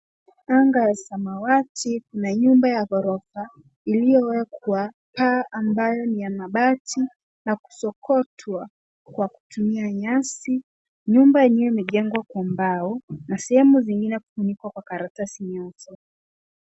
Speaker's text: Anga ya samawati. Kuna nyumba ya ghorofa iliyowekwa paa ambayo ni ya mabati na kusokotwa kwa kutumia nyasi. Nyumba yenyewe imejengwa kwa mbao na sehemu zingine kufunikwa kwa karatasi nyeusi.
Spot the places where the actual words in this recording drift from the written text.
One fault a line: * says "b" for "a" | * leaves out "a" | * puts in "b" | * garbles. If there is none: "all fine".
all fine